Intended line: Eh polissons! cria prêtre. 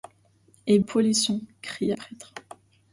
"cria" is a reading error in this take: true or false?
false